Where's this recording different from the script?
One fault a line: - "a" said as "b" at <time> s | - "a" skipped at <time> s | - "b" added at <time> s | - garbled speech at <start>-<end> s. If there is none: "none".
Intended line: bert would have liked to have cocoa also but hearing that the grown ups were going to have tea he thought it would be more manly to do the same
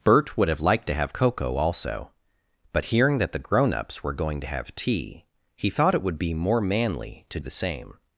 - "do" skipped at 7.4 s